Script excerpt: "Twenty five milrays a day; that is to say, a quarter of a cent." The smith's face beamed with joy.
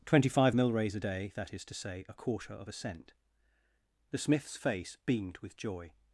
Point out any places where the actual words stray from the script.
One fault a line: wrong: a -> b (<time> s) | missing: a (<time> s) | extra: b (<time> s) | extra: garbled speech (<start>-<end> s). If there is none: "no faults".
no faults